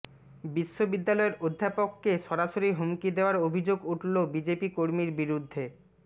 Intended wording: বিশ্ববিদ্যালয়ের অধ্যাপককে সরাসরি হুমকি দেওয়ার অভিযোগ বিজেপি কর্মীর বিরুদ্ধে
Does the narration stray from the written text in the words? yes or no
yes